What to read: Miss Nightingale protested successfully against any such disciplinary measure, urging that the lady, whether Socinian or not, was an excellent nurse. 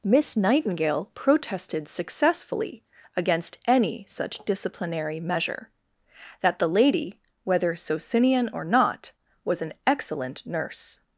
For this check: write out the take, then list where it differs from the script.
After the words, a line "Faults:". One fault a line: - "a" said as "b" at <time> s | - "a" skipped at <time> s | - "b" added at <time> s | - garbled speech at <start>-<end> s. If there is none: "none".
Miss Nightingale protested successfully against any such disciplinary measure, that the lady, whether Socinian or not, was an excellent nurse.
Faults:
- "urging" skipped at 5.7 s